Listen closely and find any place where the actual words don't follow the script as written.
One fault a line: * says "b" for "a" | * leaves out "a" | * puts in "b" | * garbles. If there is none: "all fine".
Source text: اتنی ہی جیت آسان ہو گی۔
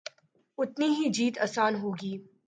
all fine